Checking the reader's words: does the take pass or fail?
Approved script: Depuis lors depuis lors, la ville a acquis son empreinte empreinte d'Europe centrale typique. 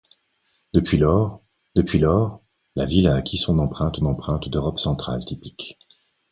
pass